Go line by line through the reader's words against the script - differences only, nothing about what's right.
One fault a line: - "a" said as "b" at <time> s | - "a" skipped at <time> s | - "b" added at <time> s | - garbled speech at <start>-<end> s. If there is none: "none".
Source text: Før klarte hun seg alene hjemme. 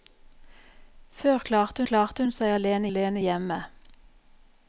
- "klarte" added at 1.9 s
- "alene" added at 2.9 s